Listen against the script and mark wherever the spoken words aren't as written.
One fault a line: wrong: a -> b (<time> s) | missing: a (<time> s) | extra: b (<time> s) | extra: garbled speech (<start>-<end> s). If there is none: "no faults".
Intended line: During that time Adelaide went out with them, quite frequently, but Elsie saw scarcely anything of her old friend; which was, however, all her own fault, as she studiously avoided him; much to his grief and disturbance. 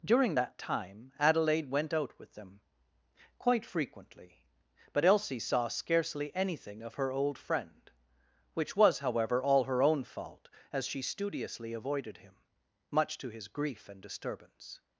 no faults